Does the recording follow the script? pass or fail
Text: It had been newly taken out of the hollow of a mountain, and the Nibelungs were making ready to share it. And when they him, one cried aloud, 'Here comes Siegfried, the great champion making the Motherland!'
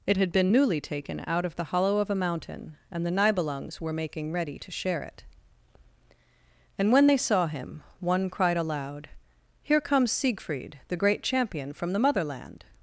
fail